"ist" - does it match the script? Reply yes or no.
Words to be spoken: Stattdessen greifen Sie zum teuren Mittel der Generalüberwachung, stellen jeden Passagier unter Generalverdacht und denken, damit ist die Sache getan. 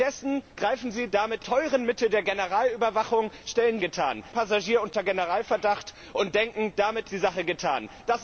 no